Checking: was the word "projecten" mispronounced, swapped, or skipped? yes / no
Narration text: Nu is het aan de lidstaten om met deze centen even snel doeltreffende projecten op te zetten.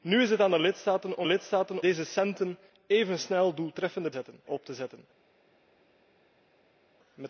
yes